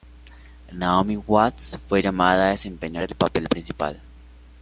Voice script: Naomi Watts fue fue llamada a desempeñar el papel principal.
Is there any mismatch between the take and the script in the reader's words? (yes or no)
yes